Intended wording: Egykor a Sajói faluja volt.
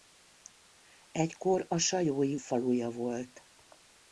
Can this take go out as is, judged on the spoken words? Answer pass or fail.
pass